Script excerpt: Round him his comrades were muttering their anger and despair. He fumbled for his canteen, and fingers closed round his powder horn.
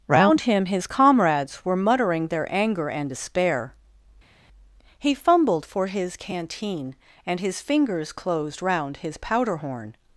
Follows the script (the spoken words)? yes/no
no